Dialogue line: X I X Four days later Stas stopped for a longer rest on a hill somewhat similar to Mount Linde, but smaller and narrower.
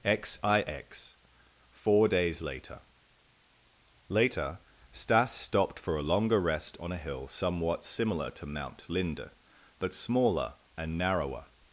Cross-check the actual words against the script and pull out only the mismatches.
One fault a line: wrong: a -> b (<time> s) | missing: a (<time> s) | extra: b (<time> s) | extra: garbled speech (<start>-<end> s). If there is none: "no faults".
extra: later (4.1 s)